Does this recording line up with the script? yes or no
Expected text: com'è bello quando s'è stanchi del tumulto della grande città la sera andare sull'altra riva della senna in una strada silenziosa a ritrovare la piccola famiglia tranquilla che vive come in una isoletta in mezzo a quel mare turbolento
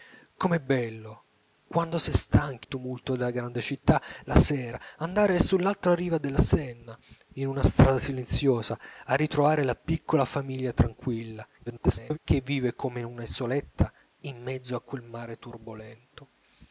no